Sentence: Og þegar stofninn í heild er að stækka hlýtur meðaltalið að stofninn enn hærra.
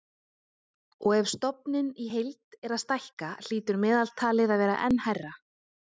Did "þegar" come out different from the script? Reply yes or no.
yes